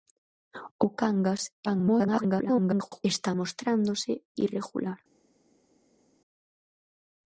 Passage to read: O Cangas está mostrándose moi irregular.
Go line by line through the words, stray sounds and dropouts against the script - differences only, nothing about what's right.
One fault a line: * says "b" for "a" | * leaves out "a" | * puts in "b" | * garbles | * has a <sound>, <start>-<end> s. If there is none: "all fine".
* garbles
* leaves out "moi"